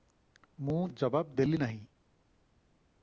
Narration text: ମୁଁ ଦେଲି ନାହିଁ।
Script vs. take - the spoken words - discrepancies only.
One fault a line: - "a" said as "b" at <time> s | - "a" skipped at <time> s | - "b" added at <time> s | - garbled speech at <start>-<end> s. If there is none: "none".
- "ଜବାବ" added at 0.9 s